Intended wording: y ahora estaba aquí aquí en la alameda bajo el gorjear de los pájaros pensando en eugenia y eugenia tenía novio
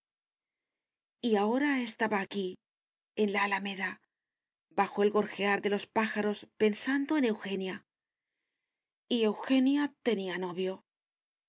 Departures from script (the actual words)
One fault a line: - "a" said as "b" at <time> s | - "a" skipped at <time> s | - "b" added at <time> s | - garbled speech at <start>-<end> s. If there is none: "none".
- "aquí" skipped at 2.6 s